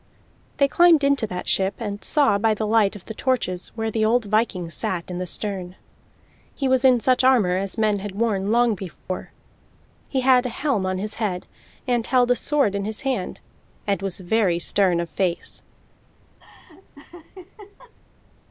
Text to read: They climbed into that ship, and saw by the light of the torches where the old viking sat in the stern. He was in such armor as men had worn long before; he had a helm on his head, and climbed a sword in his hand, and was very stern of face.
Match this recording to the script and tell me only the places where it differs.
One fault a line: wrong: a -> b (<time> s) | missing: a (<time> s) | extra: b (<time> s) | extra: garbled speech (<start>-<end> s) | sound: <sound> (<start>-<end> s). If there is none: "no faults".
sound: dropout (9.0-9.1 s)
wrong: climbed -> held (12.1 s)
sound: laugh (16.4-17.9 s)